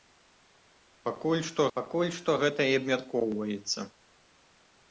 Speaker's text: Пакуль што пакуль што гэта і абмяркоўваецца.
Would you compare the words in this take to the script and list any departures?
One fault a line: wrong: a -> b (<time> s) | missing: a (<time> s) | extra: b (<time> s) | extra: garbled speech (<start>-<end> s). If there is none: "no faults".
no faults